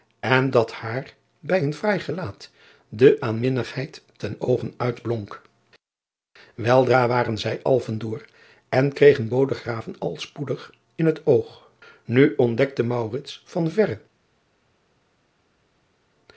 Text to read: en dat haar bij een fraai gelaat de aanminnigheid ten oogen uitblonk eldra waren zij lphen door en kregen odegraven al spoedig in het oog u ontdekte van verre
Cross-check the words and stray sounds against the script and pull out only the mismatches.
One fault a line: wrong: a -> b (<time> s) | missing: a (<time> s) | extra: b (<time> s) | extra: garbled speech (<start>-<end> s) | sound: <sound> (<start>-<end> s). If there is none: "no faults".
no faults